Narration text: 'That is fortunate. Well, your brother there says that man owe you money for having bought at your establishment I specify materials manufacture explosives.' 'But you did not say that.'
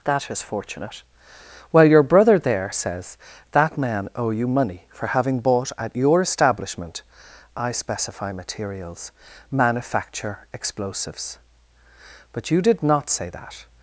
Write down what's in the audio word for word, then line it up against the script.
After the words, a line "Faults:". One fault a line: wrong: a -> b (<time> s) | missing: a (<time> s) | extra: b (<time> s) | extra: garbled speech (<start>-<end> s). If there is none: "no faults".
'That is fortunate. Well, your brother there says that man owe you money for having bought at your establishment I specify materials manufacture explosives.' 'But you did not say that.'
Faults:
no faults